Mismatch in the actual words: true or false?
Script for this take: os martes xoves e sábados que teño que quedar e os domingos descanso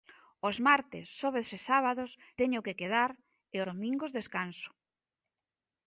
true